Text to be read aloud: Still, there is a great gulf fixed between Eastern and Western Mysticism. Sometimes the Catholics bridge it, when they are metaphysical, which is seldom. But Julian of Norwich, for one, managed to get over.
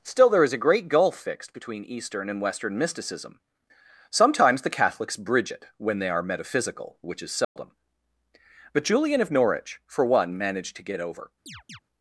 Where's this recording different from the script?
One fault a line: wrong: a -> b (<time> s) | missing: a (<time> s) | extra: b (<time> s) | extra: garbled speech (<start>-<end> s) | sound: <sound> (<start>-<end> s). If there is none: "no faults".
sound: dropout (7.4-7.6 s)
sound: chirp (11.5-11.8 s)